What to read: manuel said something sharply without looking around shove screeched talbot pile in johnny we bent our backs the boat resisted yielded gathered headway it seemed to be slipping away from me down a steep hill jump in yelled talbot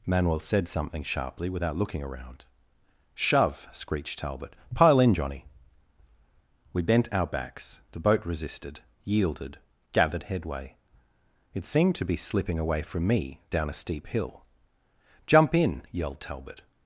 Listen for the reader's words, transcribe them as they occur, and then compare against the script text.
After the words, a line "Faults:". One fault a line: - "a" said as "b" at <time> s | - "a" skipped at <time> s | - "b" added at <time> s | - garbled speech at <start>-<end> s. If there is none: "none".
manuel said something sharply without looking around shove screeched talbot pile in johnny we bent our backs the boat resisted yielded gathered headway it seemed to be slipping away from me down a steep hill jump in yelled talbot
Faults:
none